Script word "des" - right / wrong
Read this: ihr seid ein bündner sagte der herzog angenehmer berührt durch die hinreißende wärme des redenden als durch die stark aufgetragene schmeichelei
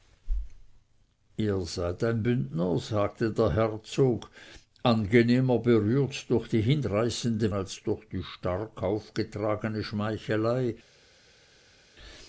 wrong